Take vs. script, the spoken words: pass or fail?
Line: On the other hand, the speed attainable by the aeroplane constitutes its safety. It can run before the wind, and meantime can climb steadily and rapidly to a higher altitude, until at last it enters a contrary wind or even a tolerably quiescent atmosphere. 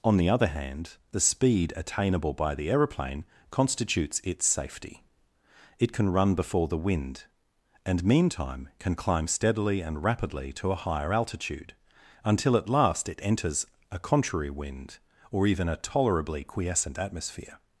pass